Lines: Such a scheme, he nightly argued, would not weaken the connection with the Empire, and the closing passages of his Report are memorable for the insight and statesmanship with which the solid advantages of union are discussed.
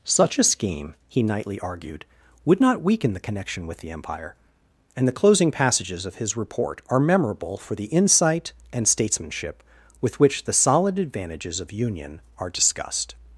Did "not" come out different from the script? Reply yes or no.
no